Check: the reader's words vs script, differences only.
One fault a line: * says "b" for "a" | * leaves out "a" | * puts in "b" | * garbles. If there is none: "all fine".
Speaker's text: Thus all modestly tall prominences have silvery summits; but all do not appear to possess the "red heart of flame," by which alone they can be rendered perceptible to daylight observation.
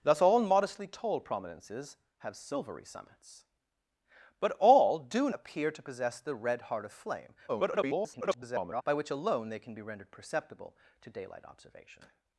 * leaves out "not"
* garbles